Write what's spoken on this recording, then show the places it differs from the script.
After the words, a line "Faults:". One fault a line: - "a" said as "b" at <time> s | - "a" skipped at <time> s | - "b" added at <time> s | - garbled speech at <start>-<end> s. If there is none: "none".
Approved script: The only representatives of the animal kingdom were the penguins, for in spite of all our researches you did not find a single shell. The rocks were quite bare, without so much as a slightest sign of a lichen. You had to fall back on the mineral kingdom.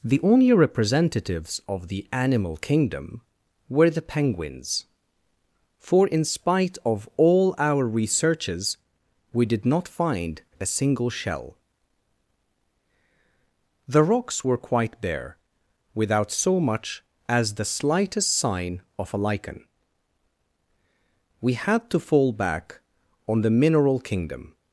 The only representatives of the animal kingdom were the penguins, for in spite of all our researches we did not find a single shell. The rocks were quite bare, without so much as the slightest sign of a lichen. We had to fall back on the mineral kingdom.
Faults:
- "you" said as "we" at 9.3 s
- "a" said as "the" at 17.5 s
- "You" said as "We" at 21.4 s